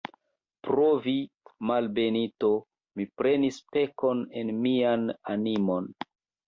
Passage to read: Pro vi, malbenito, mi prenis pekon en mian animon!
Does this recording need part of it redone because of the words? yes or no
no